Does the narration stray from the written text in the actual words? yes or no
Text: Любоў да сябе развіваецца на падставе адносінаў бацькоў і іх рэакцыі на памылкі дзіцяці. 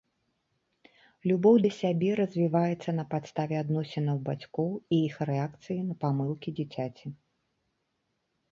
no